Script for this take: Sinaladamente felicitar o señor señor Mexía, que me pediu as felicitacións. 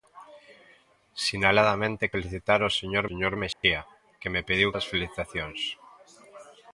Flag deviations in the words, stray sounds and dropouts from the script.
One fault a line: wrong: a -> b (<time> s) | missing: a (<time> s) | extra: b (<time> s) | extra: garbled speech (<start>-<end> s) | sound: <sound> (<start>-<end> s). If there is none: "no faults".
sound: dropout (3.5-3.6 s)